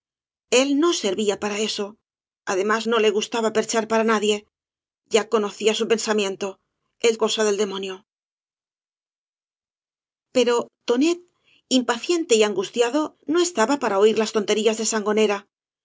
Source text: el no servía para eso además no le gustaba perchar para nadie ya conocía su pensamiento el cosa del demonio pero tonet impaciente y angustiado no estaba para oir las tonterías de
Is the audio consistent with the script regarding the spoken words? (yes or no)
yes